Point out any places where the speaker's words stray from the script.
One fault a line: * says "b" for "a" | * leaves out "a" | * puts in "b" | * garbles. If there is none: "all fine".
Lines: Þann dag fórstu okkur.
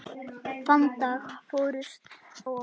all fine